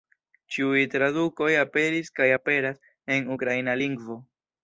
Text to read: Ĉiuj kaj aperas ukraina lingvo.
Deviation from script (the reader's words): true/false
true